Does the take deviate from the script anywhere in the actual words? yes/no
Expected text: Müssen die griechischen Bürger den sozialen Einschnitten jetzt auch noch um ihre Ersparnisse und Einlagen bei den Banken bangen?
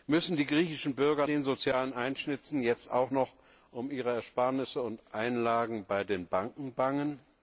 no